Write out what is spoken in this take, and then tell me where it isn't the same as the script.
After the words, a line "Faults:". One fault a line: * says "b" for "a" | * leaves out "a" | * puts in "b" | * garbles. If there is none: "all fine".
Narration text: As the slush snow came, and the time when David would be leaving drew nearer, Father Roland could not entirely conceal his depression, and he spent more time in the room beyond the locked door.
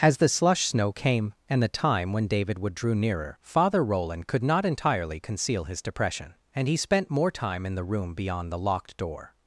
As the slush snow came, and the time when David would drew nearer, Father Roland could not entirely conceal his depression, and he spent more time in the room beyond the locked door.
Faults:
* leaves out "be leaving"